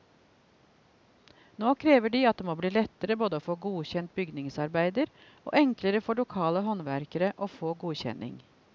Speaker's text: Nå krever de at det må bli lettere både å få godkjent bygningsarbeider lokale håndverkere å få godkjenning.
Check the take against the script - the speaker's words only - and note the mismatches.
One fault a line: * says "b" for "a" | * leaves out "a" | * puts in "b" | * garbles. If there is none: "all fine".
* puts in "og enklere for"